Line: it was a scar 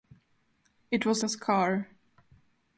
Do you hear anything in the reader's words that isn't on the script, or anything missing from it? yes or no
no